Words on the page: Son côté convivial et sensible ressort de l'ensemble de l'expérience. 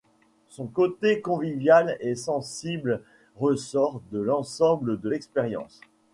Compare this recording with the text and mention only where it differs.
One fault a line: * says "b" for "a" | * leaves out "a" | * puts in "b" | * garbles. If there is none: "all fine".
all fine